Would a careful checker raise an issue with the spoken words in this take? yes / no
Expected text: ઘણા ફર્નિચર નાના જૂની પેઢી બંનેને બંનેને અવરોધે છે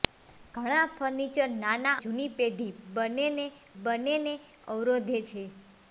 no